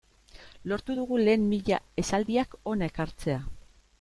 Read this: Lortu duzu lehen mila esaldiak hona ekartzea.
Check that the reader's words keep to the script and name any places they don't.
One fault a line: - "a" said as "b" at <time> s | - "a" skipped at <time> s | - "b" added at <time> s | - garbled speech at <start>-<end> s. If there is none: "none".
- "duzu" said as "dugu" at 1.0 s